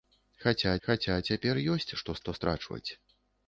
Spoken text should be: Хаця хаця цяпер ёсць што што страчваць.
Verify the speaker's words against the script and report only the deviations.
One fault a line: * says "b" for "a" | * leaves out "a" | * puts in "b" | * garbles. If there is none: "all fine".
all fine